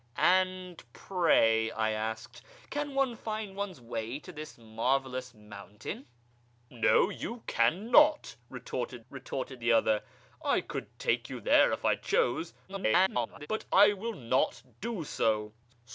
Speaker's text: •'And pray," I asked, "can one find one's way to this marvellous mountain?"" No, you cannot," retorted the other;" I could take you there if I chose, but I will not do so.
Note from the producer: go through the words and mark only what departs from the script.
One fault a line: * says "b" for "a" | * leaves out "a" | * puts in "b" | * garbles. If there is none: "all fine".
* puts in "retorted"
* garbles